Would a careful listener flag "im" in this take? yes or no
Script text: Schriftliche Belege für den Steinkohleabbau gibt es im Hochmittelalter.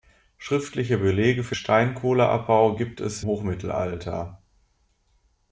yes